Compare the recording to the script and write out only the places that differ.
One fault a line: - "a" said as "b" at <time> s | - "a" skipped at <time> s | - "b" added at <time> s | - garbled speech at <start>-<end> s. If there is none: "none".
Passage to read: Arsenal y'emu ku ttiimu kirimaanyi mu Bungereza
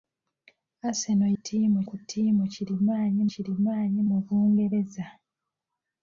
- "y'emu" said as "ttiimu" at 1.4 s
- "kirimaanyi" added at 3.3 s